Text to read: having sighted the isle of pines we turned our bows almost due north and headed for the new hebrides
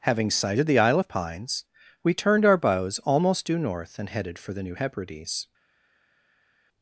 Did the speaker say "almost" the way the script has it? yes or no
yes